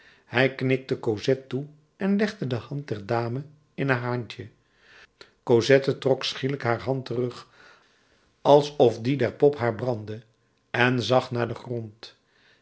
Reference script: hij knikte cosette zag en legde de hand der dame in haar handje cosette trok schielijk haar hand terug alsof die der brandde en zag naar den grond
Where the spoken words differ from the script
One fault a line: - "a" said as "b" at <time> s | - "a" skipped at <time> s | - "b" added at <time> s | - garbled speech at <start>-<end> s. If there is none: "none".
- "zag" said as "toe" at 1.5 s
- "pop haar" added at 9.3 s